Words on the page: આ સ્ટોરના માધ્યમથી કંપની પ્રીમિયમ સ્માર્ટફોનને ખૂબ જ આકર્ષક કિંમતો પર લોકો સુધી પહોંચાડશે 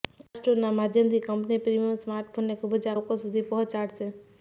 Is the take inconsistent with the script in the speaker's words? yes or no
yes